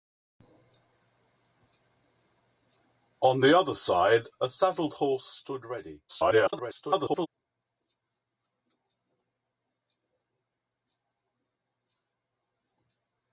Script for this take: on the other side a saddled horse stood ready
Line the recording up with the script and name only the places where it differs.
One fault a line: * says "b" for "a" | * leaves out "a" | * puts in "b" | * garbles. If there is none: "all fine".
* garbles